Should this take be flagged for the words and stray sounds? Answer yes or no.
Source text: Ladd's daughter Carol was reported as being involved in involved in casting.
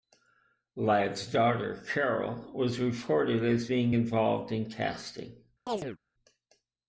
yes